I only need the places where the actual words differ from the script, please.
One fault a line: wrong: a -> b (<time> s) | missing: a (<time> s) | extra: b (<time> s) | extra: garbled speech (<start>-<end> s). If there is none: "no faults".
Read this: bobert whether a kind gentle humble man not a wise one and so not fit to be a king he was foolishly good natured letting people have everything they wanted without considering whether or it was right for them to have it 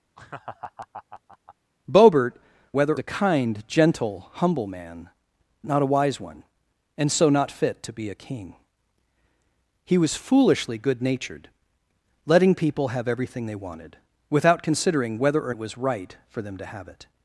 no faults